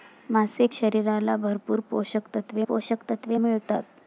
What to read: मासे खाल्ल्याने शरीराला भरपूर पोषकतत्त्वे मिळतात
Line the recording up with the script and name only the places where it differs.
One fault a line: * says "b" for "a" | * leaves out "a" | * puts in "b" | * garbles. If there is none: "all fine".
* leaves out "खाल्ल्याने"
* puts in "पोषकतत्त्वे"